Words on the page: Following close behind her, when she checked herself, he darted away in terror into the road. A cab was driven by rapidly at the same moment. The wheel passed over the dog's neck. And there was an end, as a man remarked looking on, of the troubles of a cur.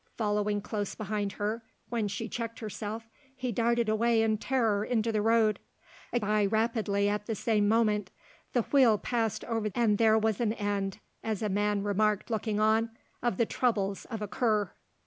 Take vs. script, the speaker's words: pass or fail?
fail